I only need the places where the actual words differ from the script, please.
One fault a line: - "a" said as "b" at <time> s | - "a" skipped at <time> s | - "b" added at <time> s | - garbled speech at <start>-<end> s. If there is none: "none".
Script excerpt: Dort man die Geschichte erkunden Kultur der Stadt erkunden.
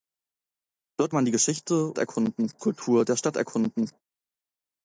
none